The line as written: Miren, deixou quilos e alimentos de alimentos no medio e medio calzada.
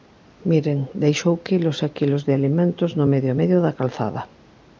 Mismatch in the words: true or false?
true